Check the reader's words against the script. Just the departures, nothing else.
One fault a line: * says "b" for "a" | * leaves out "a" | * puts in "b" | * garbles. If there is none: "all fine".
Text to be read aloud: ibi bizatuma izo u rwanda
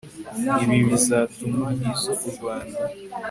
all fine